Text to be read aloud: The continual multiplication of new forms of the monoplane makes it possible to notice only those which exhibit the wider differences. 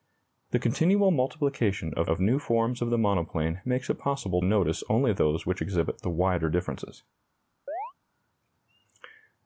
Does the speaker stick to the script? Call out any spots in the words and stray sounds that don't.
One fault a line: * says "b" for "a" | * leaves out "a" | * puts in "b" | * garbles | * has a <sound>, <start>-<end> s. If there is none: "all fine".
* puts in "of"
* leaves out "to"
* has a chirp, 7.7-7.9 s